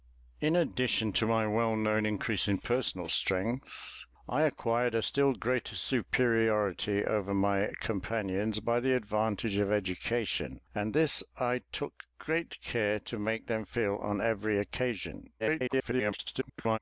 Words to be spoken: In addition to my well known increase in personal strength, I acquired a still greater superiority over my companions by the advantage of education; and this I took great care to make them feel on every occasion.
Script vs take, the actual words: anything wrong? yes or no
yes